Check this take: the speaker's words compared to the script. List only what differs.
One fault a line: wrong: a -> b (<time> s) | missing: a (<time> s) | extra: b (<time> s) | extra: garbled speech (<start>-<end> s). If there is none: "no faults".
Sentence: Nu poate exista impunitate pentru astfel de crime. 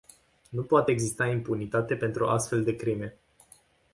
no faults